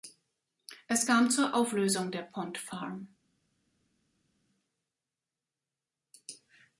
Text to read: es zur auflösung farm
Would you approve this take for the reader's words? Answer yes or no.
no